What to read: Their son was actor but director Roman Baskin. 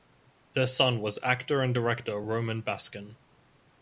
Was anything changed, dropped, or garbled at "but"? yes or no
yes